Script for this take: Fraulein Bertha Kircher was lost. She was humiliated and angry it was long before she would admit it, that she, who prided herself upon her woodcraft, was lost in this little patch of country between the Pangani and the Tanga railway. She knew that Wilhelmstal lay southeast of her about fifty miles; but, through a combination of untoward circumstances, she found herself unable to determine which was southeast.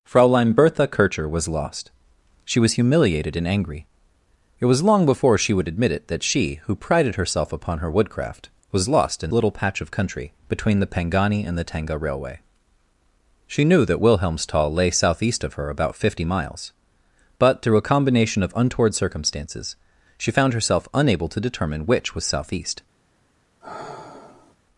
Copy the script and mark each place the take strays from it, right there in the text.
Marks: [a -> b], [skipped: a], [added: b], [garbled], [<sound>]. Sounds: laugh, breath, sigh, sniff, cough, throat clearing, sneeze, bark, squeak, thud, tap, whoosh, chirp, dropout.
Fraulein Bertha Kircher was lost. She was humiliated and angry it was long before she would admit it, that she, who prided herself upon her woodcraft, was lost in [skipped: this] little patch of country between the Pangani and the Tanga railway. She knew that Wilhelmstal lay southeast of her about fifty miles; but, through a combination of untoward circumstances, she found herself unable to determine which was southeast. [sigh]